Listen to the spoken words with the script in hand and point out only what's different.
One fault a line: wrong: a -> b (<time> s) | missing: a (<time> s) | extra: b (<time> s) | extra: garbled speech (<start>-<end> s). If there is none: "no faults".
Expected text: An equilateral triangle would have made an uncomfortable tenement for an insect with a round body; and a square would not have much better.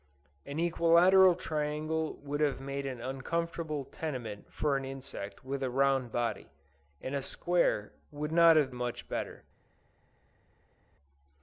no faults